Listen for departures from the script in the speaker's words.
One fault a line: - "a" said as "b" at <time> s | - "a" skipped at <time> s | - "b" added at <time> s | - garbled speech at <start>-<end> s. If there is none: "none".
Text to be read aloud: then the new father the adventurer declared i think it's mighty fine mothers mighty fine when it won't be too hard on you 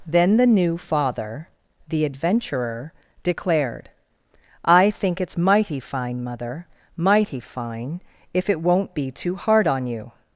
- "mothers" said as "mother" at 6.2 s
- "when" said as "if" at 8.3 s